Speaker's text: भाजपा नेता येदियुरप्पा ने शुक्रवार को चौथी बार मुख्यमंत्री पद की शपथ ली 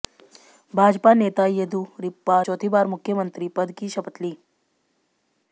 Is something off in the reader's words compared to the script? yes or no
yes